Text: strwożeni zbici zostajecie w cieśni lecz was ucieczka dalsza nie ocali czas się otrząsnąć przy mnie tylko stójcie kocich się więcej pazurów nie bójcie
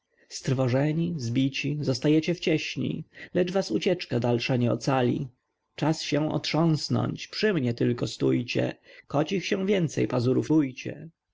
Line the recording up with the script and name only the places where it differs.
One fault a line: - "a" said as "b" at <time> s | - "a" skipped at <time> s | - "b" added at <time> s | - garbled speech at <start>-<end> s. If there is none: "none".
- "nie" skipped at 10.5 s